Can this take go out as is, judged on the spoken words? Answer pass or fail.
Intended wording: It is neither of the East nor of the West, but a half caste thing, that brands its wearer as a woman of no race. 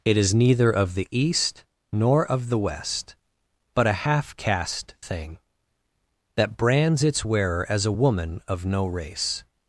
pass